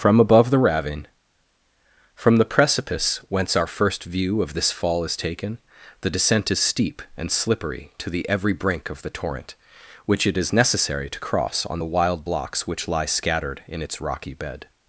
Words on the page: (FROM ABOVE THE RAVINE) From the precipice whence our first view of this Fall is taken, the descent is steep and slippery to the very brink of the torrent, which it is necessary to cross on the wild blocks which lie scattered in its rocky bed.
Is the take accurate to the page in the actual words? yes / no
no